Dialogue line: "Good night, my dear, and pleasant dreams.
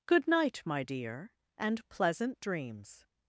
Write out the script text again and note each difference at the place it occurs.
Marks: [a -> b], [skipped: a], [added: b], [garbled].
"Good night, my dear, and pleasant dreams.